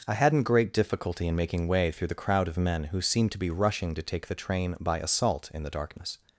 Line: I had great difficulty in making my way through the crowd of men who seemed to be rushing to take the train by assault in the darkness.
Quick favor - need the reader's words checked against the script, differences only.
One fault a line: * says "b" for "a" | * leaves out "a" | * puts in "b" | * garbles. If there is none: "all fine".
* says "hadn't" for "had"
* leaves out "my"